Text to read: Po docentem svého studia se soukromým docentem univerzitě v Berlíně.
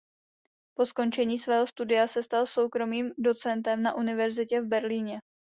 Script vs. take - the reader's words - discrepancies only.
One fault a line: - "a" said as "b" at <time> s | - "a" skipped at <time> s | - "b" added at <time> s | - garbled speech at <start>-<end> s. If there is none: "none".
- "docentem" said as "skončení" at 0.8 s
- "stal" added at 2.2 s
- "na" added at 3.8 s